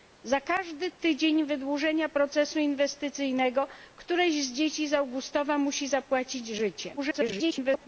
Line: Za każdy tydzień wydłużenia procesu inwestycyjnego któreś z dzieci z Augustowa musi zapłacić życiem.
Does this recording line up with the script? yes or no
no